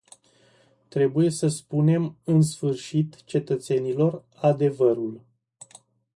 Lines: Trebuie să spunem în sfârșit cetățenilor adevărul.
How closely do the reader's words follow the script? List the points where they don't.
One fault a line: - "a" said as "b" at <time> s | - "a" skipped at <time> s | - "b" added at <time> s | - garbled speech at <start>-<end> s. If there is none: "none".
none